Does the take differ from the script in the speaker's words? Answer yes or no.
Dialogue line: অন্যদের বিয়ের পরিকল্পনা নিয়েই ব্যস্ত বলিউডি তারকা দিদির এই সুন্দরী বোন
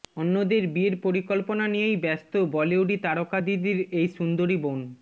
no